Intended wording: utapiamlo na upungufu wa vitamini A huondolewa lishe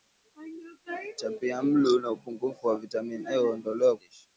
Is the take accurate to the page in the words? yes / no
yes